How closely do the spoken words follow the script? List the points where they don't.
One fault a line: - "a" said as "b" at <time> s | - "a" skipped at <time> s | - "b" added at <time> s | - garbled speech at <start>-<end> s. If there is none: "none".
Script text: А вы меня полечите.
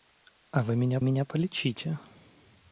- "меня" added at 1.0 s